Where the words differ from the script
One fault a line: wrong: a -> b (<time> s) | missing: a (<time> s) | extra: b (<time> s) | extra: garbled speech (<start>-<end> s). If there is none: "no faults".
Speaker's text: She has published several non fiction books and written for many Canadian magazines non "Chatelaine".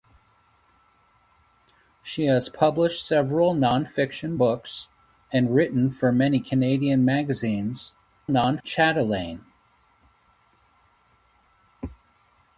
no faults